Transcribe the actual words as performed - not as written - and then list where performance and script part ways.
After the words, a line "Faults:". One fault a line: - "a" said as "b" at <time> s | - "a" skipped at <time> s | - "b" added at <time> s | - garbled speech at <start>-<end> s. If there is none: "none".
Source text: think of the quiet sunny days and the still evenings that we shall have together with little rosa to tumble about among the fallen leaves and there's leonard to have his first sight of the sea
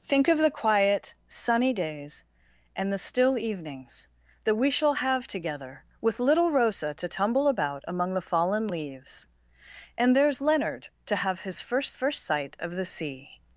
think of the quiet sunny days and the still evenings that we shall have together with little rosa to tumble about among the fallen leaves and there's leonard to have his first first sight of the sea
Faults:
- "first" added at 11.9 s